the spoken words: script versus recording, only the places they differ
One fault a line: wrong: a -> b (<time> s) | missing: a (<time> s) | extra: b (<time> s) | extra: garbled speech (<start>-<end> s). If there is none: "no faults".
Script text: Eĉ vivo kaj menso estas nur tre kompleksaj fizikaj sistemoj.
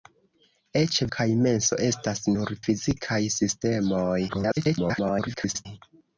missing: vivo (0.9 s)
missing: tre kompleksaj (2.5 s)
extra: garbled speech (4.3-5.7 s)